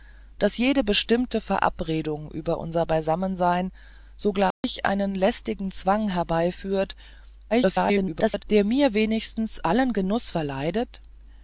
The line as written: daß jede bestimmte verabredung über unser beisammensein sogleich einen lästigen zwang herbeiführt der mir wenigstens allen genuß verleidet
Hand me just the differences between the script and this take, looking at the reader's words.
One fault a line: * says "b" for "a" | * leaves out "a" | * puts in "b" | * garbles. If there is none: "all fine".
* garbles